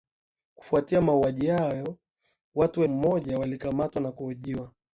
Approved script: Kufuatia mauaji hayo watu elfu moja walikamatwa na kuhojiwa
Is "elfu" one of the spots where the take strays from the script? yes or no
yes